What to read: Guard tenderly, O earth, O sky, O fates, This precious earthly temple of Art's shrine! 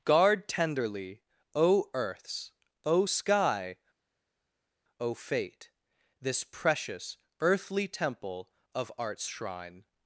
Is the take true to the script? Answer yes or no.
no